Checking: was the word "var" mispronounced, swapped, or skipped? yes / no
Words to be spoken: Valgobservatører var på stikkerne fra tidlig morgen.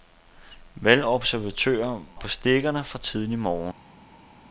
yes